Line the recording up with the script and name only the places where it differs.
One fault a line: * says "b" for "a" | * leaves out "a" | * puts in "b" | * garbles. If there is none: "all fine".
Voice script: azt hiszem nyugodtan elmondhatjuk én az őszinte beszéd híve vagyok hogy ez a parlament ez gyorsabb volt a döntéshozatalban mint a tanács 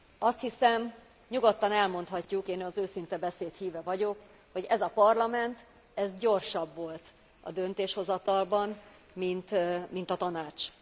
all fine